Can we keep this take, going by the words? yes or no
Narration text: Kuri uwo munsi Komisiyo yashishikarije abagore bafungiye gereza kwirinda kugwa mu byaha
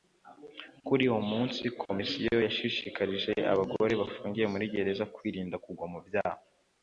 no